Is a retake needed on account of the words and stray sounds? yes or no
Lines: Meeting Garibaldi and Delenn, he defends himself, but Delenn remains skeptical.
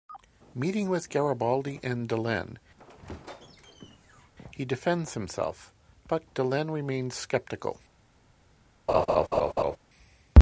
yes